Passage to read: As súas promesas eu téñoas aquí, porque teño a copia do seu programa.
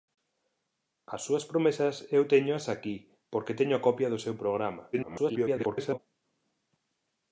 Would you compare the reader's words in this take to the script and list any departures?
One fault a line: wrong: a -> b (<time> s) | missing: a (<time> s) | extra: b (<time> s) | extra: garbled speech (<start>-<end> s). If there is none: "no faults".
extra: garbled speech (4.9-6.0 s)